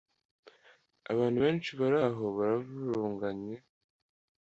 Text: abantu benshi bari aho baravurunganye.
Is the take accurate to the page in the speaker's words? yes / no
yes